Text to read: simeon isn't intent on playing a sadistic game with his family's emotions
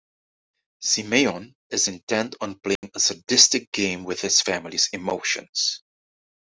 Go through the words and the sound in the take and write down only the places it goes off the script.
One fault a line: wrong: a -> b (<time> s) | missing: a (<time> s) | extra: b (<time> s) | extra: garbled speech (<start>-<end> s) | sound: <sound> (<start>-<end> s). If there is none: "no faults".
wrong: isn't -> is (1.7 s)
sound: dropout (2.8-2.8 s)